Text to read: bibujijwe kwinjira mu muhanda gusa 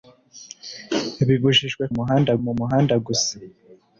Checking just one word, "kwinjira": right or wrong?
wrong